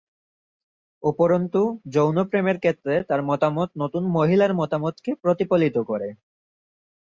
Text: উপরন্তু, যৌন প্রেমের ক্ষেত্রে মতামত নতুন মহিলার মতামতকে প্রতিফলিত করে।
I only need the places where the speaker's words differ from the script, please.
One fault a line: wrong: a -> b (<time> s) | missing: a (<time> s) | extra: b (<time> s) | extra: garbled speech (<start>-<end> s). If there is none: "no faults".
extra: তার (3.0 s)